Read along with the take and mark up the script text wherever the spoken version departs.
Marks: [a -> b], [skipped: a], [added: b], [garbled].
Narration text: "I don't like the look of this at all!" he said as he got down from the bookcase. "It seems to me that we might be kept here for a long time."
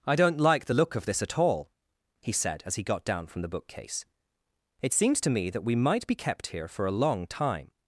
"I don't like the look of this at all!" he said as he got down from the bookcase. "It seems to me that we might be kept here for a long time."